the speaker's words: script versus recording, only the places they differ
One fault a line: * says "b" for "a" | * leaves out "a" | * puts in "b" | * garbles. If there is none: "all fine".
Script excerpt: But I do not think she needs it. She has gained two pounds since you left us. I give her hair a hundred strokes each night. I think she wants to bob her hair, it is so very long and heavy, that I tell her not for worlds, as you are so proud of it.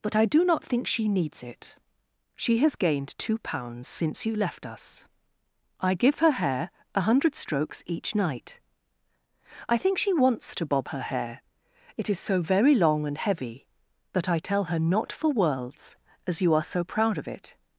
all fine